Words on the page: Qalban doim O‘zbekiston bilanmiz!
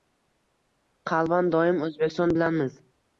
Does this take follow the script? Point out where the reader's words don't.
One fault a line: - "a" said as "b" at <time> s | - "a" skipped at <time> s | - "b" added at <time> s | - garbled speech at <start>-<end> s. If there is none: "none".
none